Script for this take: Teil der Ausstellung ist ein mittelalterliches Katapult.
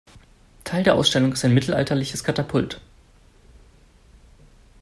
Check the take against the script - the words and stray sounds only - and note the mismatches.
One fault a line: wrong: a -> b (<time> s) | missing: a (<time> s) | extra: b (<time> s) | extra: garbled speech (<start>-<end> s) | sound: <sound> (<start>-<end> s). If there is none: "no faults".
no faults